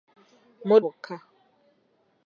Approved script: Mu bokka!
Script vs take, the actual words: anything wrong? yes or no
no